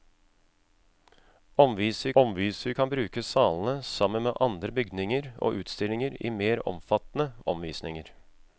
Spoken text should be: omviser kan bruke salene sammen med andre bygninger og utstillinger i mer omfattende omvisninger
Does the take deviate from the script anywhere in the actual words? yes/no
yes